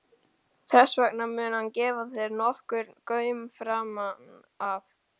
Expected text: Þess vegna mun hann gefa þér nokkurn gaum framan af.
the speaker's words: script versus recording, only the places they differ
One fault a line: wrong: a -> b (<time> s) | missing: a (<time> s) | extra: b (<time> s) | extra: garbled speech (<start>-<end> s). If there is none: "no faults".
no faults